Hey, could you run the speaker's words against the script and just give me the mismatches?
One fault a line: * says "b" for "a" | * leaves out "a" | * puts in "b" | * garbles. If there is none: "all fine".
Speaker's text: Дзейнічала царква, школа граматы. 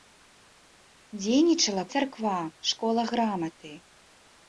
all fine